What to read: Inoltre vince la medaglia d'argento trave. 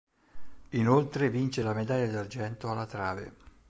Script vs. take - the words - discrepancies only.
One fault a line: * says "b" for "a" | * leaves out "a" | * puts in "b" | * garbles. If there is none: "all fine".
* puts in "alla"